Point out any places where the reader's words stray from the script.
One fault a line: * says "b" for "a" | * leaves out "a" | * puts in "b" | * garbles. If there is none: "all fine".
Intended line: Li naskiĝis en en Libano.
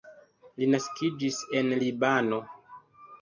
* leaves out "en"